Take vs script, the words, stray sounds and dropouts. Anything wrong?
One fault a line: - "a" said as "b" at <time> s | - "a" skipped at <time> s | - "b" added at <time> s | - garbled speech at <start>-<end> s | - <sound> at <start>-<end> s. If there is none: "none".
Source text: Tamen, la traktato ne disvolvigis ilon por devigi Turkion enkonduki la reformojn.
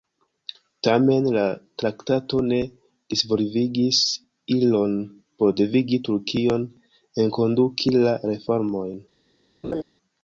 - laugh at 9.6-9.8 s